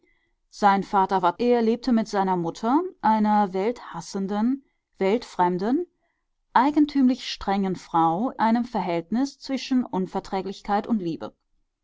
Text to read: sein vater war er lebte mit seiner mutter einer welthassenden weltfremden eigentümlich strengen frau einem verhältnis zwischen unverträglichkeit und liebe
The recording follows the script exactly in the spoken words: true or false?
true